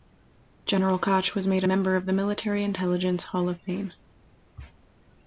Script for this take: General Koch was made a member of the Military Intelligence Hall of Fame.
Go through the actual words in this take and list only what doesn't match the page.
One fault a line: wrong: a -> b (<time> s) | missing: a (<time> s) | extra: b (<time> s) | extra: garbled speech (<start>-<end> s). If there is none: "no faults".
no faults